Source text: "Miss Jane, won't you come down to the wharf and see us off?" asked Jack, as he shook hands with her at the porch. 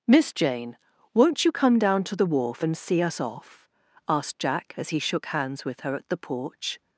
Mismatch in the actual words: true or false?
false